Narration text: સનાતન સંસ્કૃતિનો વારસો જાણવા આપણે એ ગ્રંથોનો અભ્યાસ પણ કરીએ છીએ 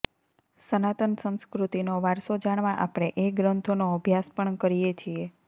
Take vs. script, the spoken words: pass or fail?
pass